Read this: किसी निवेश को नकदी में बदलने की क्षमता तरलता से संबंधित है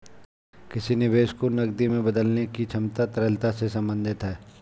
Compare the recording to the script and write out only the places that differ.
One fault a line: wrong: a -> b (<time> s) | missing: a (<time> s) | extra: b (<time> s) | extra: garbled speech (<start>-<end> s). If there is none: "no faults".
no faults